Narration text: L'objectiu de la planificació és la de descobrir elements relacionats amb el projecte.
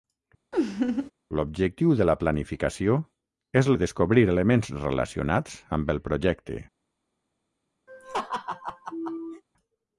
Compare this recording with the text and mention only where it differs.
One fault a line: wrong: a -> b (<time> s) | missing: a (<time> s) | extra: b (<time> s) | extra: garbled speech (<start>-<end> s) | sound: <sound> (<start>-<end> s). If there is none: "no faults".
sound: laugh (0.5-1.1 s)
missing: la (3.7 s)
sound: laugh (7.9-9.4 s)